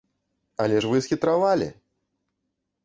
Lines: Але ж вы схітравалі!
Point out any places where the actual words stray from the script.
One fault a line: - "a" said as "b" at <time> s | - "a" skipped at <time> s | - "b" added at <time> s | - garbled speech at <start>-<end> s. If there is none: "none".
none